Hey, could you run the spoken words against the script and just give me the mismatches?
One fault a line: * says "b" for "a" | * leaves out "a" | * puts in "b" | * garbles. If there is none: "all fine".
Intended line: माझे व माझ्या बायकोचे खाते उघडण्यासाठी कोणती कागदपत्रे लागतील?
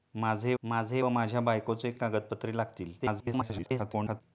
* puts in "माझे"
* leaves out "खाते उघडण्यासाठी कोणती"
* garbles